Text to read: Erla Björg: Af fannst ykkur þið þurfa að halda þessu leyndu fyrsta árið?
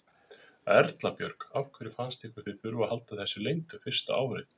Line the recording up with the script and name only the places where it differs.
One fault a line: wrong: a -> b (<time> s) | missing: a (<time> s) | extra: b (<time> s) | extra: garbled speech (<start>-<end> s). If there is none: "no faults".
extra: hverju (1.8 s)